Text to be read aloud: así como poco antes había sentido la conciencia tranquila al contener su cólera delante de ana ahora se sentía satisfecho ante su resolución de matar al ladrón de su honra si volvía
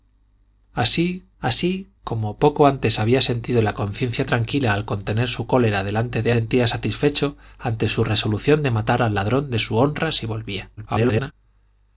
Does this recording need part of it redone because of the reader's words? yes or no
yes